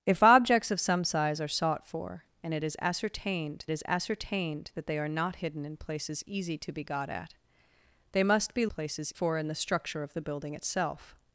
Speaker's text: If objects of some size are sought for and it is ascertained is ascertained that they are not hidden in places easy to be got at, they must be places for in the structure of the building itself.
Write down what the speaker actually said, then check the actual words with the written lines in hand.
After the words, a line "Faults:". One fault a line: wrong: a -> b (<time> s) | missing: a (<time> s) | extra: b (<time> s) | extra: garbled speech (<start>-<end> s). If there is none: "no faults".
If objects of some size are sought for and it is ascertained is ascertained that they are not hidden in places easy to be got at, they must be places for in the structure of the building itself.
Faults:
no faults